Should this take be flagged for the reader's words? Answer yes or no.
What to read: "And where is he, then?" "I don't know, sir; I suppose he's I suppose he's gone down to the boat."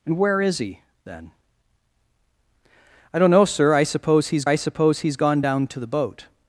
no